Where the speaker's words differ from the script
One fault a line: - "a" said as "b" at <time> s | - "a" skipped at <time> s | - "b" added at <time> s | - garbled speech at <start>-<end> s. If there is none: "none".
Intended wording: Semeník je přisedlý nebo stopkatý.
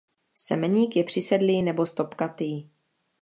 none